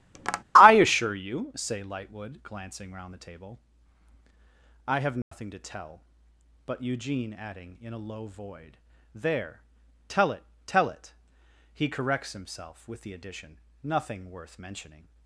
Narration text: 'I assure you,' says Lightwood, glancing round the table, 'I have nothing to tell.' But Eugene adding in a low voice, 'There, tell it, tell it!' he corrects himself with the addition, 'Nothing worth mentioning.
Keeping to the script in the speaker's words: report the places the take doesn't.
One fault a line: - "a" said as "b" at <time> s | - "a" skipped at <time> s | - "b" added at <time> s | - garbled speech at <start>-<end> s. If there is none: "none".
- "says" said as "say" at 1.6 s
- "voice" said as "void" at 8.3 s